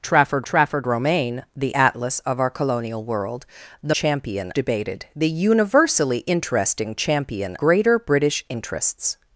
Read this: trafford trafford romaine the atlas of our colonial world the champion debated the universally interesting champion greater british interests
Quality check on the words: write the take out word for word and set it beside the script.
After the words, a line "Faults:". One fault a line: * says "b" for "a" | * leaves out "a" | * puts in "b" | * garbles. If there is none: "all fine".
trafford trafford romaine the atlas of our colonial world the champion debated the universally interesting champion greater british interests
Faults:
all fine